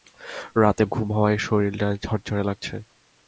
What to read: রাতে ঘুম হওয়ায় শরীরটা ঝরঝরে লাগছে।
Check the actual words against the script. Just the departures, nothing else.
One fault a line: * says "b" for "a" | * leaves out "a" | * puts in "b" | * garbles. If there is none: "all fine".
all fine